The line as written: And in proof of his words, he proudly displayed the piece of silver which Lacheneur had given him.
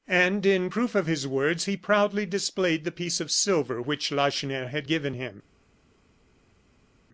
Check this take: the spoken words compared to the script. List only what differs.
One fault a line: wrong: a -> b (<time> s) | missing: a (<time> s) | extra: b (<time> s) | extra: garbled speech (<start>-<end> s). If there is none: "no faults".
no faults